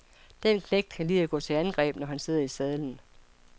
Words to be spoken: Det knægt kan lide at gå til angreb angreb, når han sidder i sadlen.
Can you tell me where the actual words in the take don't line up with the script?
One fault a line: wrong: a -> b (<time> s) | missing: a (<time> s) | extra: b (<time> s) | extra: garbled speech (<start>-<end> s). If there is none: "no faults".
wrong: Det -> Den (0.4 s)
missing: angreb (1.9 s)